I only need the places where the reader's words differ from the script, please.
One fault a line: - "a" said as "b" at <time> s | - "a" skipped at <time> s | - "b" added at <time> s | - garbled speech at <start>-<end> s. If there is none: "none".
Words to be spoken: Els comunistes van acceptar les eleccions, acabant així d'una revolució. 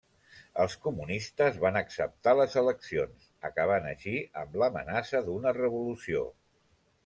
- "amb l'amenaça" added at 4.5 s